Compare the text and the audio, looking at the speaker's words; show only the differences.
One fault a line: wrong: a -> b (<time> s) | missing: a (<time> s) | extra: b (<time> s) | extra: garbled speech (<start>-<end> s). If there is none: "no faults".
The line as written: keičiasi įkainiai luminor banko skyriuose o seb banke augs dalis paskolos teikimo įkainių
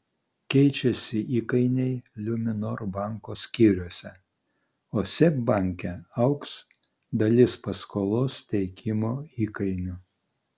no faults